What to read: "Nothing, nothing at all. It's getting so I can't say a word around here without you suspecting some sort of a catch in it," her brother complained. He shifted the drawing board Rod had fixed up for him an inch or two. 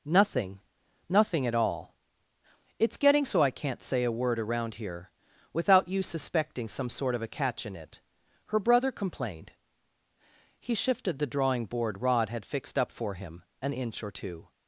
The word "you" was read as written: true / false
true